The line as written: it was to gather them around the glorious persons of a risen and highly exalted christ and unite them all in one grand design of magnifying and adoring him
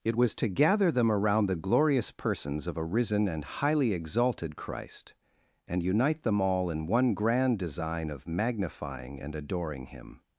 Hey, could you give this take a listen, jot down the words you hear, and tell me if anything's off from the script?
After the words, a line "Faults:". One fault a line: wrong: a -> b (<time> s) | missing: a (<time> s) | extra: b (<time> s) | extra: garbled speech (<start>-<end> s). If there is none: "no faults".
it was to gather them around the glorious persons of a risen and highly exalted christ and unite them all in one grand design of magnifying and adoring him
Faults:
no faults